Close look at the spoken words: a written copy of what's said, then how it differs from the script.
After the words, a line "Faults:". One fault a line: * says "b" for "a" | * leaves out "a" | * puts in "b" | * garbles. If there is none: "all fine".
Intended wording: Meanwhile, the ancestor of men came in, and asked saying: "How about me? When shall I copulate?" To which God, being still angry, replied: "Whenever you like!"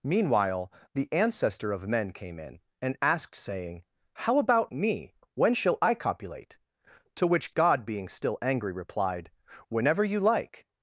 Meanwhile, the ancestor of men came in, and asked saying: "How about me? When shall I copulate?" To which God, being still angry, replied: "Whenever you like!"
Faults:
all fine